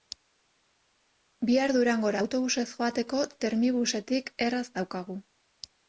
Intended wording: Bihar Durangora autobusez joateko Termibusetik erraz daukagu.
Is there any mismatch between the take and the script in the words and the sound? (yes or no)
no